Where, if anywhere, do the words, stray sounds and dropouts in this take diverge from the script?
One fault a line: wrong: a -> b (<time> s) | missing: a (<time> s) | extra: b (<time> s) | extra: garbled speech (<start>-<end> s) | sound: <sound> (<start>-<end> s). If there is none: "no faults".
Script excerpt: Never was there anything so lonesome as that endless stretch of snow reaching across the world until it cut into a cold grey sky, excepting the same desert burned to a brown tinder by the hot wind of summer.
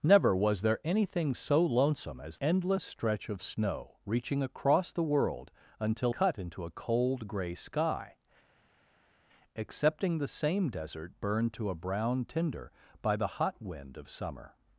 missing: that (2.4 s)
missing: it (6.1 s)